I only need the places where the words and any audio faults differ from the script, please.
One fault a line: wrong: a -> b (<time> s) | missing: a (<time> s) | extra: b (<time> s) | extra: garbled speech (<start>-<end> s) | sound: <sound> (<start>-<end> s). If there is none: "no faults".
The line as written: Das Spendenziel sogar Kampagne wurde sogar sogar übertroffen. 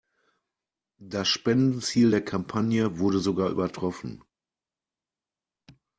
wrong: sogar -> der (2.1 s)
missing: sogar (3.5 s)